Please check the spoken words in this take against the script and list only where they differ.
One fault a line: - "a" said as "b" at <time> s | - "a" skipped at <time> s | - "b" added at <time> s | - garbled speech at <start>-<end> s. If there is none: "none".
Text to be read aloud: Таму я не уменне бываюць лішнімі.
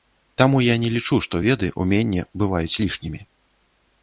- "лічу што веды" added at 0.9 s